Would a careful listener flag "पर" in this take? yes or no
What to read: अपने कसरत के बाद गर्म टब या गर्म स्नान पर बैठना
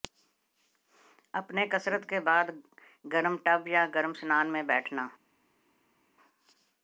yes